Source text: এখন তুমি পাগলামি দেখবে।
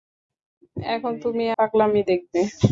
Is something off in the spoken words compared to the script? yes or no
no